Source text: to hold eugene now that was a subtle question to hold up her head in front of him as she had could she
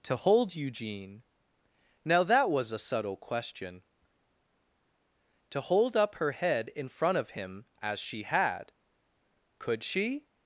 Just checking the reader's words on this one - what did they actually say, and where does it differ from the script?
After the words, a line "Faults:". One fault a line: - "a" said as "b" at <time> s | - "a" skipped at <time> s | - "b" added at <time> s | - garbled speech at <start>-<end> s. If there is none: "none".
to hold eugene now that was a subtle question to hold up her head in front of him as she had could she
Faults:
none